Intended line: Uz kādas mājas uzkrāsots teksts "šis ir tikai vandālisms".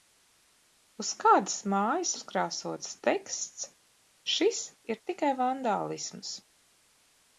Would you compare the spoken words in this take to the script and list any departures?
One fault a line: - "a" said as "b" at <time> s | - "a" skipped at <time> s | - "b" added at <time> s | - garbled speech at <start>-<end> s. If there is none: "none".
none